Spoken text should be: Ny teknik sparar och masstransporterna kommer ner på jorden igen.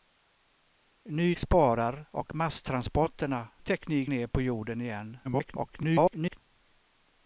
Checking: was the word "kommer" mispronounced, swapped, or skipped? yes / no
yes